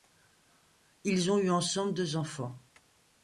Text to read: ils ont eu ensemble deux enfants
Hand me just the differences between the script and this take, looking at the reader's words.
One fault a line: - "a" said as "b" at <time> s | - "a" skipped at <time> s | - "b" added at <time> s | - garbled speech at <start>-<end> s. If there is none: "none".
none